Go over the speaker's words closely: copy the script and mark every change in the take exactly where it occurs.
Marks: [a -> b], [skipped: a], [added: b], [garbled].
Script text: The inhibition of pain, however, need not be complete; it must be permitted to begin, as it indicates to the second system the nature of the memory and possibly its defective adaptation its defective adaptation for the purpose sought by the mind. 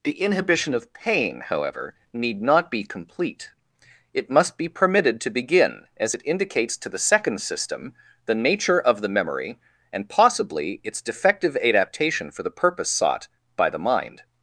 The inhibition of pain, however, need not be complete; it must be permitted to begin, as it indicates to the second system the nature of the memory and possibly its defective adaptation [skipped: its defective adaptation] for the purpose sought by the mind.